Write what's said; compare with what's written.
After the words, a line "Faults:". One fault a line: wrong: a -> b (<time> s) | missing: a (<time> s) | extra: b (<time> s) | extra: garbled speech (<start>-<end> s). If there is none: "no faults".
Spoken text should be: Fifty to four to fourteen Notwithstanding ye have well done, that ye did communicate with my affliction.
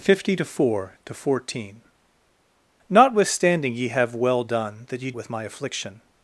Fifty to four to fourteen Notwithstanding ye have well done, that ye with my affliction.
Faults:
missing: did communicate (5.1 s)